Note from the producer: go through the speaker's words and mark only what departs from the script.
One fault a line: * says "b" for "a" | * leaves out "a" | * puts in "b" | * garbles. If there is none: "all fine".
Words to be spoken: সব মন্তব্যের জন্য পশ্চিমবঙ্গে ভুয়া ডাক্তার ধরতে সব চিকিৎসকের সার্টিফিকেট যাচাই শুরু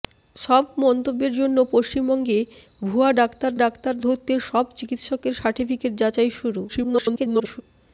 * puts in "ডাক্তার"
* garbles